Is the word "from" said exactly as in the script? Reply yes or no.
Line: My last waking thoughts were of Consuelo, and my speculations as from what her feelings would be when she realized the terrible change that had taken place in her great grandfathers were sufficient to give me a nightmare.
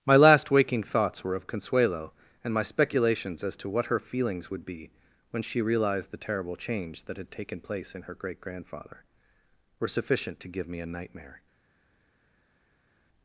no